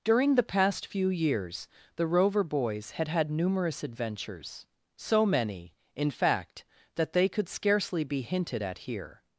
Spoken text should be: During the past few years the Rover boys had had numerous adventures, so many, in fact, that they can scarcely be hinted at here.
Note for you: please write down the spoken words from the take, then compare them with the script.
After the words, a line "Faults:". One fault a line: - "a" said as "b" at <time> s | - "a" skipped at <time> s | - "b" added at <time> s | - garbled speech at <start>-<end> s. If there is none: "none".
During the past few years the Rover boys had had numerous adventures, so many, in fact, that they could scarcely be hinted at here.
Faults:
- "can" said as "could" at 7.3 s